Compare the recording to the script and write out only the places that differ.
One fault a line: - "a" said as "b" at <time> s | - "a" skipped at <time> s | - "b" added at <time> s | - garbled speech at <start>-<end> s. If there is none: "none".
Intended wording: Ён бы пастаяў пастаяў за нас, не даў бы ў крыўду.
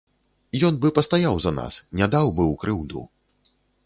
- "пастаяў" skipped at 1.4 s